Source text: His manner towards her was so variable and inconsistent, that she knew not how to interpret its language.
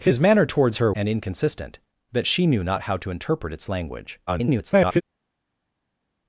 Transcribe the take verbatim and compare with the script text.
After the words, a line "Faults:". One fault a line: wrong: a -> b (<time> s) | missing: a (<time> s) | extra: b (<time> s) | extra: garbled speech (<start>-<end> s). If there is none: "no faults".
His manner towards her and inconsistent, that she knew not how to interpret its language. [garbled]
Faults:
missing: was so variable (0.9 s)
extra: garbled speech (4.3-5.0 s)